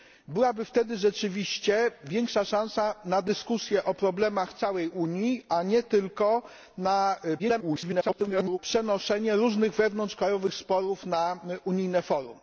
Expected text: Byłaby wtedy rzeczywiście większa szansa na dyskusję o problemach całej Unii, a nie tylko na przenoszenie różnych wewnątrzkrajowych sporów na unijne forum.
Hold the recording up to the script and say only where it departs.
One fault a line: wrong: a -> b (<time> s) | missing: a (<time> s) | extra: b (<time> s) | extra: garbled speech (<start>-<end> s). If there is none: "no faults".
extra: garbled speech (7.4-8.6 s)